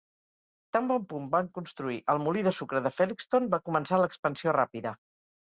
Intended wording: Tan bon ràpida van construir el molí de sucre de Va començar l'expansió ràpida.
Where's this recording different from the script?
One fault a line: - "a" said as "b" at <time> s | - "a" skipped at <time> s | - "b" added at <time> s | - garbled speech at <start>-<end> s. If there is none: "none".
- "ràpida" said as "punt" at 1.1 s
- "Felixton" added at 3.0 s